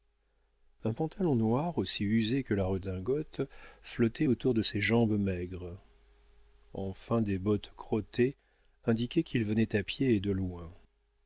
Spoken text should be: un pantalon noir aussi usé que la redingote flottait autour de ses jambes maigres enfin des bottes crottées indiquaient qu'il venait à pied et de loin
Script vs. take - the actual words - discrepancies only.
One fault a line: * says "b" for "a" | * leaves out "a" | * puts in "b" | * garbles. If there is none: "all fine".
all fine